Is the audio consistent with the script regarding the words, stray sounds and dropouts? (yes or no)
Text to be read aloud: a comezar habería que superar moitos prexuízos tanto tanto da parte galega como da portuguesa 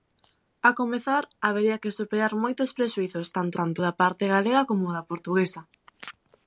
yes